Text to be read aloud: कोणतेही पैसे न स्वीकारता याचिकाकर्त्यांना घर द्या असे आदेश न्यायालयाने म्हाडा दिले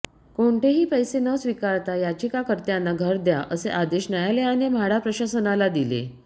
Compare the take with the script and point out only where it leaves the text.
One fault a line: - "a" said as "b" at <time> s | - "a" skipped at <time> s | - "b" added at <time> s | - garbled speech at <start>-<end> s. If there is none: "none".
- "प्रशासनाला" added at 5.0 s